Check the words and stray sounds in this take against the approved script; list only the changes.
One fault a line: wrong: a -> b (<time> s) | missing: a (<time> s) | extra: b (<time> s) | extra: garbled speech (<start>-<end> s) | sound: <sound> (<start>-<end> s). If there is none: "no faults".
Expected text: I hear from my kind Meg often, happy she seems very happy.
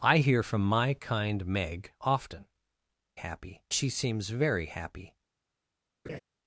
sound: laugh (6.0-6.2 s)